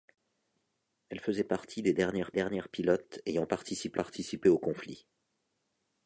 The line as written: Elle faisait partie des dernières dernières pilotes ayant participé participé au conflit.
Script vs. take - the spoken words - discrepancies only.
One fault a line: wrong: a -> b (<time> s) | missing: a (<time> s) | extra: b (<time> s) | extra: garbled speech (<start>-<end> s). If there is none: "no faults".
no faults